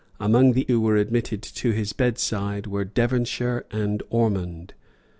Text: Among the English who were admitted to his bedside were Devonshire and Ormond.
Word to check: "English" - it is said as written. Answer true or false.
false